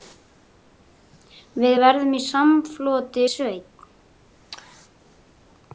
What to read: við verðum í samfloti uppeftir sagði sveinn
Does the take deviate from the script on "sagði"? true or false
true